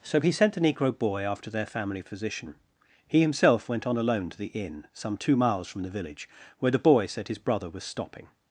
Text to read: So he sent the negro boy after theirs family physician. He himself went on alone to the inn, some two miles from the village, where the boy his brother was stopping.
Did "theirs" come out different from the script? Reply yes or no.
yes